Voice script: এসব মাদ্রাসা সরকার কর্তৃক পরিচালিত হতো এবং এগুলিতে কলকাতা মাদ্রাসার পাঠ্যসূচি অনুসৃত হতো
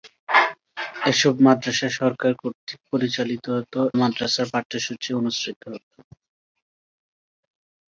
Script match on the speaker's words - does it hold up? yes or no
no